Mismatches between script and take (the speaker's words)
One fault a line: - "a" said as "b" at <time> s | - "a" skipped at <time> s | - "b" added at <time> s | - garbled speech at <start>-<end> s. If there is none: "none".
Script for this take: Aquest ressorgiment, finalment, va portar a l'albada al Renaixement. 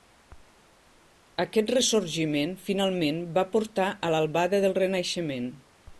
- "al" said as "del" at 4.7 s